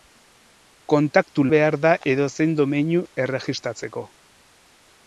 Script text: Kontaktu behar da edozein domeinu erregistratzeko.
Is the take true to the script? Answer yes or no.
yes